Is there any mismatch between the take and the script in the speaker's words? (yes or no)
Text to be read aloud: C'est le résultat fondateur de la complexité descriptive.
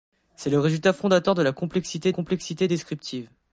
yes